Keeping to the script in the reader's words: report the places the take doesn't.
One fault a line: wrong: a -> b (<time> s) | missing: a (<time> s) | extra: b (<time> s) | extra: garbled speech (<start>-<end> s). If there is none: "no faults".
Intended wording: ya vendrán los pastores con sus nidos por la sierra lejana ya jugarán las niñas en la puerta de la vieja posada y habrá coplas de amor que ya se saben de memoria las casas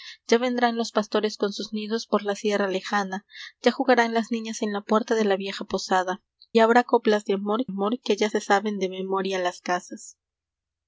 missing: y (6.2 s)
extra: amor (7.7 s)